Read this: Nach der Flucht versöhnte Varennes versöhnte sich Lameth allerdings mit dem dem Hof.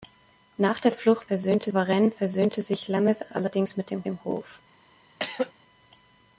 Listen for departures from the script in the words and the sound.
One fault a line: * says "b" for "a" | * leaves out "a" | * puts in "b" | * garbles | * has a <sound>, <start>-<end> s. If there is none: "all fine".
* has a throat clearing, 5.2-5.5 s